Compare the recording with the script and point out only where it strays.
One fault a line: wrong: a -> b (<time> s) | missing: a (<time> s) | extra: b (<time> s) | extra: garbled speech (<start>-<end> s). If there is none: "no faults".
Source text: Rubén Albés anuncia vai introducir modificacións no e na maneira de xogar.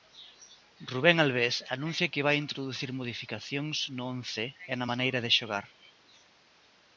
extra: que (2.1 s)
extra: once (4.1 s)